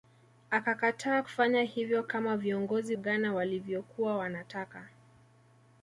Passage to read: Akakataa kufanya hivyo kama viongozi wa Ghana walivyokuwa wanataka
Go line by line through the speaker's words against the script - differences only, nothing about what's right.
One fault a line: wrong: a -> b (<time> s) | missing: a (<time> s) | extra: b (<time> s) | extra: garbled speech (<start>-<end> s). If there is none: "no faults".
missing: wa (3.0 s)